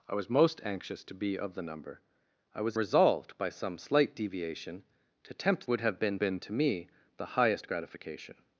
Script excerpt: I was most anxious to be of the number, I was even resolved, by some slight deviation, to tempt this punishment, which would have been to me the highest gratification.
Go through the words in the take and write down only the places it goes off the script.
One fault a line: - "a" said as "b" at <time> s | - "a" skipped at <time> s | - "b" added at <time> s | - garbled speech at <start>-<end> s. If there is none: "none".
- "even" skipped at 2.8 s
- "this punishment which" skipped at 5.7 s
- "been" added at 6.2 s